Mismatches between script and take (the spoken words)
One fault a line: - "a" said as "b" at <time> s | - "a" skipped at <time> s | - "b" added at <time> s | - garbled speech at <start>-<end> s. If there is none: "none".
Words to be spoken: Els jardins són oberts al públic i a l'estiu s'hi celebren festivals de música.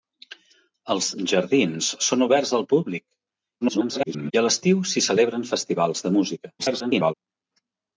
- garbled speech at 3.6-4.3 s
- garbled speech at 6.6-7.1 s